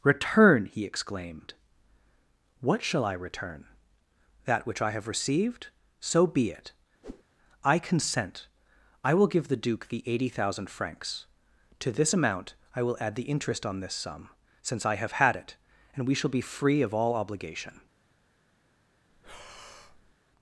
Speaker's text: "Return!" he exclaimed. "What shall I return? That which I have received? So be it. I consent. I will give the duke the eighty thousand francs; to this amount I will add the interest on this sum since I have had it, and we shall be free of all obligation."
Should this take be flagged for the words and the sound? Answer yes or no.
yes